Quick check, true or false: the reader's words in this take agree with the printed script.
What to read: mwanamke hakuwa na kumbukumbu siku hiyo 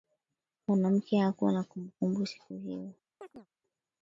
true